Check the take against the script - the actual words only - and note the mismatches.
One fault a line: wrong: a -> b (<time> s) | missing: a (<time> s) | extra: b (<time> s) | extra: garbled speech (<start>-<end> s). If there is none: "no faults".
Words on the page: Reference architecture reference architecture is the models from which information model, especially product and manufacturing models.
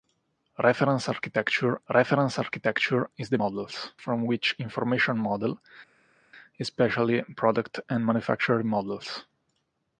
no faults